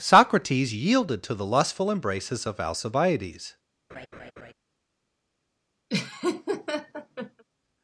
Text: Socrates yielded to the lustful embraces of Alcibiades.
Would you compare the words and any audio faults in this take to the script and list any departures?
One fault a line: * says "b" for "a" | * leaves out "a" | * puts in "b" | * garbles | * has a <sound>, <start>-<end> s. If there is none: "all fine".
* has a laugh, 3.9-4.5 s
* has a laugh, 5.9-7.4 s